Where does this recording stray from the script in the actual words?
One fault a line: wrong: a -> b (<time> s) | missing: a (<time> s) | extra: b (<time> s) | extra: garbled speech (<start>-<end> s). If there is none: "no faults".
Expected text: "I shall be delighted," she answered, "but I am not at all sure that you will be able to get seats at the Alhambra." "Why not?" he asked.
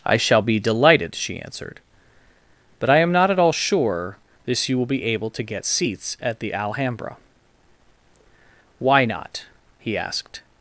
wrong: that -> this (4.4 s)